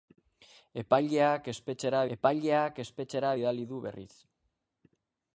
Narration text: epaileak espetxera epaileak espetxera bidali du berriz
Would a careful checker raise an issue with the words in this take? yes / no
no